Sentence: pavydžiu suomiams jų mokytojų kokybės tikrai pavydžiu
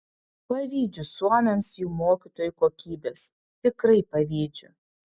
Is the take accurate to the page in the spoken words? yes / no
yes